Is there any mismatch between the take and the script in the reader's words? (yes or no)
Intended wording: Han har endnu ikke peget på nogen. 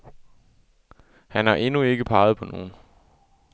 no